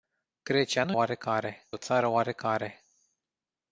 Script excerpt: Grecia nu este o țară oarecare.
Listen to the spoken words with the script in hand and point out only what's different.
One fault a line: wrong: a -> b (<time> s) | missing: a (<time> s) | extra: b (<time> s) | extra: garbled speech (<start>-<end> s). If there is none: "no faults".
wrong: este -> oarecare (0.9 s)